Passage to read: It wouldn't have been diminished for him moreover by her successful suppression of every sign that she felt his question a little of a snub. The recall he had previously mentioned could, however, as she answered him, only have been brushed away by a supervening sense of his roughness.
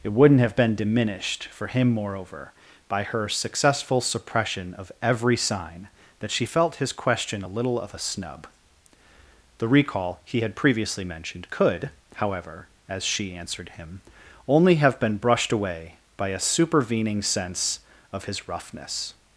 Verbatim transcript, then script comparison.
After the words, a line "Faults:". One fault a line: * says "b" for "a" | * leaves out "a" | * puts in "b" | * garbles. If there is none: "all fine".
It wouldn't have been diminished for him moreover by her successful suppression of every sign that she felt his question a little of a snub. The recall he had previously mentioned could, however, as she answered him, only have been brushed away by a supervening sense of his roughness.
Faults:
all fine